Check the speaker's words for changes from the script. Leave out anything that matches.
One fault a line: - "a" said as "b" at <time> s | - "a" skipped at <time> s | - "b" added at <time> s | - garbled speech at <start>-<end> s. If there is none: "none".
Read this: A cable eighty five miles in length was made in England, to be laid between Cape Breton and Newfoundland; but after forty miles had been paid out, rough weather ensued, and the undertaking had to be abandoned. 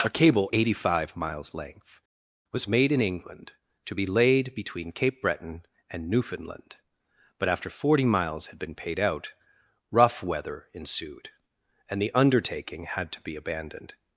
- "in" skipped at 1.5 s